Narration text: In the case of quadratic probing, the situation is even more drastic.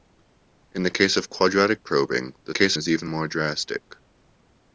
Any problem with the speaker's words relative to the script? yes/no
yes